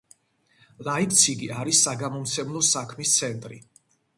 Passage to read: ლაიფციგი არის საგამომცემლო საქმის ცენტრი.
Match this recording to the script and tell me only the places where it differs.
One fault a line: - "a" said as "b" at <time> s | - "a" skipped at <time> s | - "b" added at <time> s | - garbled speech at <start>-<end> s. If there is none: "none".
none